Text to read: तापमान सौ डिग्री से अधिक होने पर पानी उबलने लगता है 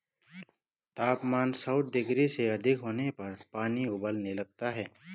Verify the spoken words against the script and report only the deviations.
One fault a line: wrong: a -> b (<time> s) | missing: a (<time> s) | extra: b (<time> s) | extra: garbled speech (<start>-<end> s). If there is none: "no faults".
no faults